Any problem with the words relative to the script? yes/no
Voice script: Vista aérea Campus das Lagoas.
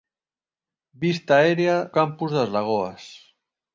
no